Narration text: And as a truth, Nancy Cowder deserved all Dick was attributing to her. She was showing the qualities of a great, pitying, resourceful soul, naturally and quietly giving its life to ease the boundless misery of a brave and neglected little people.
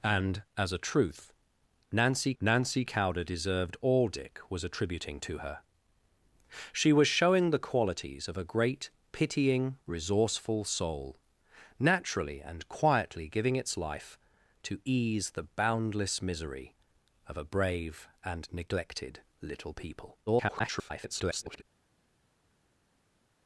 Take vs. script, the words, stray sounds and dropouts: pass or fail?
fail